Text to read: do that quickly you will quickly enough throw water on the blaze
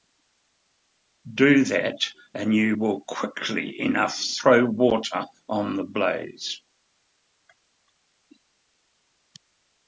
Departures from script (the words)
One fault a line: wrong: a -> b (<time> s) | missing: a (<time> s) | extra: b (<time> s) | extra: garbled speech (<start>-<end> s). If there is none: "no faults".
wrong: quickly -> and (2.3 s)